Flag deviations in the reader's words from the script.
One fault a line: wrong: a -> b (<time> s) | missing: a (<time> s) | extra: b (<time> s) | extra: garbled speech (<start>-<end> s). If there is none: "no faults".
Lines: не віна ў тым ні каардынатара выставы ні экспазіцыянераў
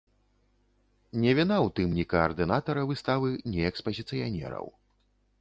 no faults